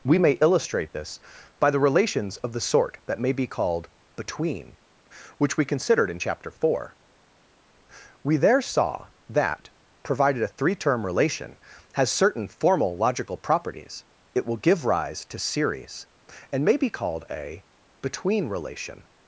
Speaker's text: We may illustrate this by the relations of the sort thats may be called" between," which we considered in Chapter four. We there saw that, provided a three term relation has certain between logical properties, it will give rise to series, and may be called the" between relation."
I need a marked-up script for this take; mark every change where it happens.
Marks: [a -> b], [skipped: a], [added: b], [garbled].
We may illustrate this by the relations of the sort [thats -> that] may be called" between," which we considered in Chapter four. We there saw that, provided a three term relation has certain [between -> formal] logical properties, it will give rise to series, and may be called [the" -> a] between relation."